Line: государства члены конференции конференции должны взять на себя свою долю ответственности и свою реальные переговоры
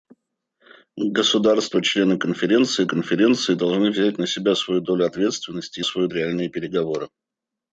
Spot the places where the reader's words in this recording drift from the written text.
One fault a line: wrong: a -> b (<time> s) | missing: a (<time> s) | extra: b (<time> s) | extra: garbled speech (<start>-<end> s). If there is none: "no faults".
no faults